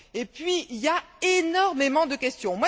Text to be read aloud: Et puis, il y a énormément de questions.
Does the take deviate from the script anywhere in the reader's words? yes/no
no